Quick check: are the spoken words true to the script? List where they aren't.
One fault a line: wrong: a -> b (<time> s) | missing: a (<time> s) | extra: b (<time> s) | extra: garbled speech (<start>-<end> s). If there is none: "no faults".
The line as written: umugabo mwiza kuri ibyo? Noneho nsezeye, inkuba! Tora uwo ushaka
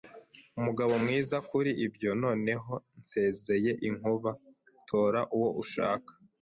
no faults